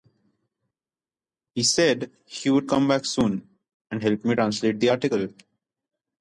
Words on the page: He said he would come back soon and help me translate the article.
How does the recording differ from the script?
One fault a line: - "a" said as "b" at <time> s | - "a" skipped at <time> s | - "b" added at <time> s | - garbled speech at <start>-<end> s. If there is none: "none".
none